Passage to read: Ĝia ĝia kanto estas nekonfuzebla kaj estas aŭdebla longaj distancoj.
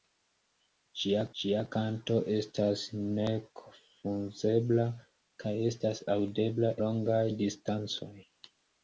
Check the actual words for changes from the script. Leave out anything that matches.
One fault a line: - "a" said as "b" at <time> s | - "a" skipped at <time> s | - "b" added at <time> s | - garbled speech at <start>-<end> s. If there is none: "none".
none